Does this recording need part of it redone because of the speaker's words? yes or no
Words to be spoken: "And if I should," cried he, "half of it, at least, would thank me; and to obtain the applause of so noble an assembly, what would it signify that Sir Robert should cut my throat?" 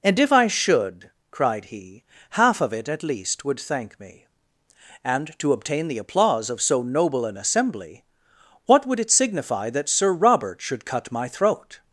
no